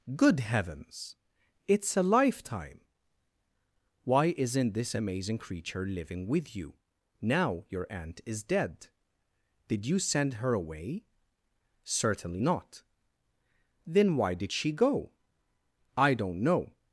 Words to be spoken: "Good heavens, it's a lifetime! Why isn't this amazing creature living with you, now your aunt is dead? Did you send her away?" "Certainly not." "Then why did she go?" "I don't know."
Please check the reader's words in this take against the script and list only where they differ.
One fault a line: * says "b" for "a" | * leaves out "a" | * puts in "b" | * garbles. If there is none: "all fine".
all fine